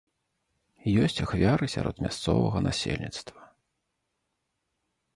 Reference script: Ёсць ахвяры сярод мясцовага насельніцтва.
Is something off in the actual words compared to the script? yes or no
no